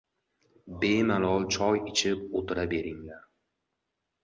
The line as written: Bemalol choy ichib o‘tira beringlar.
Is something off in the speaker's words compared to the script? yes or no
no